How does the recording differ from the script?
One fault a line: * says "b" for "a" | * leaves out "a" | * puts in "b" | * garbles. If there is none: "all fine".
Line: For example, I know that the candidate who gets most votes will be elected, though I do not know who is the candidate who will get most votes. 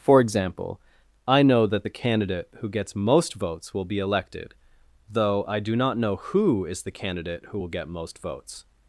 all fine